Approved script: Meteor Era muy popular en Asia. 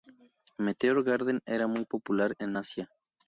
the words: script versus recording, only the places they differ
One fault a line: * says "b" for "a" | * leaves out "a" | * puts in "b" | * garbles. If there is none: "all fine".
* puts in "Garden"